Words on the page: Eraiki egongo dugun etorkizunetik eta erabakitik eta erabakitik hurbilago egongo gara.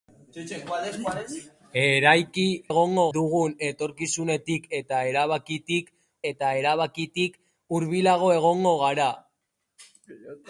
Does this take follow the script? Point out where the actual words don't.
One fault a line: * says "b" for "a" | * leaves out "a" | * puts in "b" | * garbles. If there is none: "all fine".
all fine